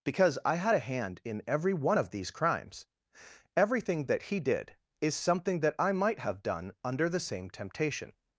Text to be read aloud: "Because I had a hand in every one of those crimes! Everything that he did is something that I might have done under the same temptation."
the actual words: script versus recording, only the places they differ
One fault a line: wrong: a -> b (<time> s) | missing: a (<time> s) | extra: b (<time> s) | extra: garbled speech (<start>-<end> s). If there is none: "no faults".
wrong: those -> these (2.1 s)